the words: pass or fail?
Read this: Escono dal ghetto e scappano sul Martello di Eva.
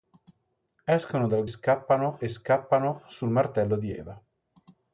fail